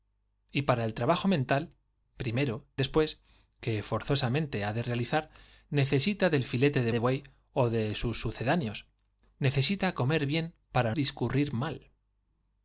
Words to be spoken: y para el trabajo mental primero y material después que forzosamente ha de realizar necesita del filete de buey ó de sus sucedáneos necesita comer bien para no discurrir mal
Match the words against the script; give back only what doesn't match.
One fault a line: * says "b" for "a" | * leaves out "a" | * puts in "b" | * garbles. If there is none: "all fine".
* leaves out "y material"
* puts in "de"
* leaves out "no"